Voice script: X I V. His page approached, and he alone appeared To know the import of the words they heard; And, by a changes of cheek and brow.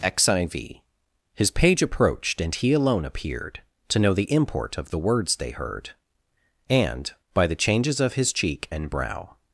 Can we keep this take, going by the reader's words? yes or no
no